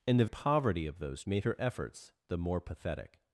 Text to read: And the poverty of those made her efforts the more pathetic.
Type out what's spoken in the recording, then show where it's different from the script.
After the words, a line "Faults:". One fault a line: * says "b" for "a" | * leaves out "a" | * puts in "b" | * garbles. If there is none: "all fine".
And the poverty of those made her efforts the more pathetic.
Faults:
all fine